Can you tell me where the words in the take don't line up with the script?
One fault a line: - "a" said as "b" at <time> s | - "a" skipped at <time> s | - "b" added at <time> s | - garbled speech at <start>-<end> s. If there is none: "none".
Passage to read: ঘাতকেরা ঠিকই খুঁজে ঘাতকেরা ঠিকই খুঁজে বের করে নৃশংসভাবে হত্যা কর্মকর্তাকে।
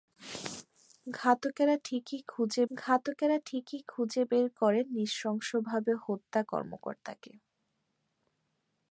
none